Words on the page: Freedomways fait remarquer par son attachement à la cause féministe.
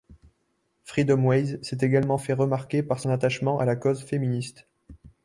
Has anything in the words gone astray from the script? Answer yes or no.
yes